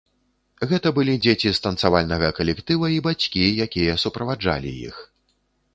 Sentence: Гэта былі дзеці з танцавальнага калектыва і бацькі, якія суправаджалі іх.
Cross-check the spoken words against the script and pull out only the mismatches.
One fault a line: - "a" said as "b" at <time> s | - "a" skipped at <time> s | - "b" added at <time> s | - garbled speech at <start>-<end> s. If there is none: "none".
none